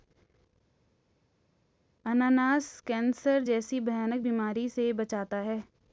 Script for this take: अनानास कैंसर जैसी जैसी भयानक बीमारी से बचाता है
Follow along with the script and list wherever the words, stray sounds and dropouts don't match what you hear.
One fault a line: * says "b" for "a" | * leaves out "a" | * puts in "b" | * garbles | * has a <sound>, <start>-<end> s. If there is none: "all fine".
* leaves out "जैसी"